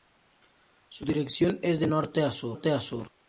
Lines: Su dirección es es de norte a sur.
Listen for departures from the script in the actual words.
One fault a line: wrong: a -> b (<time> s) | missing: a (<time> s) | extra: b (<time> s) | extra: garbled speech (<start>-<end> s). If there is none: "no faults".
missing: es (1.8 s)